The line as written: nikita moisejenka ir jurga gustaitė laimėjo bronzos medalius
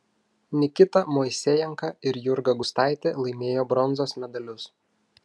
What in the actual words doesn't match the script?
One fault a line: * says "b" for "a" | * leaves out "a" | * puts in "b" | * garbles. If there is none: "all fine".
all fine